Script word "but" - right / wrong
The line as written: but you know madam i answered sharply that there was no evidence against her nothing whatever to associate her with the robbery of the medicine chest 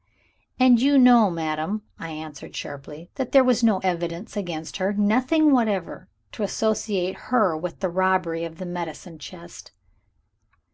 wrong